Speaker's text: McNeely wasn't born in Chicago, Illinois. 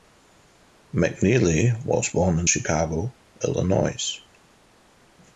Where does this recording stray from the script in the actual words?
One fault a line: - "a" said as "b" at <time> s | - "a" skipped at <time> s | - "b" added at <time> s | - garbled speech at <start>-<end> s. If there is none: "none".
- "wasn't" said as "was" at 1.9 s